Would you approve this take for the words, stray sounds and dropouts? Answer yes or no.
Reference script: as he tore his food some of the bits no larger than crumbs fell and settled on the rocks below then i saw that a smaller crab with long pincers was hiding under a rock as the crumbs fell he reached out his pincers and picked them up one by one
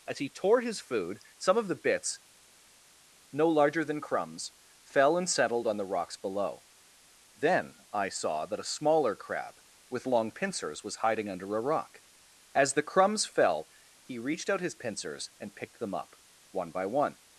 yes